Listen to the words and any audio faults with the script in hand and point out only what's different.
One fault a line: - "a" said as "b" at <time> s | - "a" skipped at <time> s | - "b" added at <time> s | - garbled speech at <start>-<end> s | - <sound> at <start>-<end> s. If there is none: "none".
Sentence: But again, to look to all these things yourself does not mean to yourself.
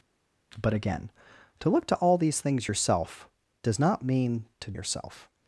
none